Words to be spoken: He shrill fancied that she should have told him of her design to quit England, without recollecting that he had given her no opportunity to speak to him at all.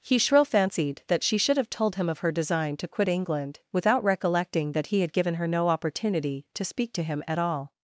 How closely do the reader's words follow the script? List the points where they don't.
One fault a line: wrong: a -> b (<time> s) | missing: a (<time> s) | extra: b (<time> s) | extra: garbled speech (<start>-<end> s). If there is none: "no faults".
no faults